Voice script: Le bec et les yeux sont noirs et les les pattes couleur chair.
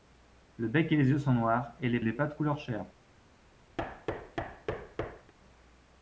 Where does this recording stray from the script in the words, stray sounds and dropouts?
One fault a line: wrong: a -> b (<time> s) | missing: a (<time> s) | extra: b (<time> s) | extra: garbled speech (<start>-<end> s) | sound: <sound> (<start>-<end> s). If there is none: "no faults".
sound: thud (3.8-5.3 s)